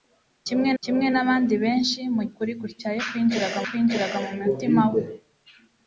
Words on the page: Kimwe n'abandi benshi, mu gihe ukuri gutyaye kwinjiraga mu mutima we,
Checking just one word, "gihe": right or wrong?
wrong